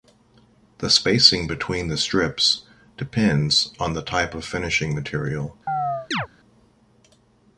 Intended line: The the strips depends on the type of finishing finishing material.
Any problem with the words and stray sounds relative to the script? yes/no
yes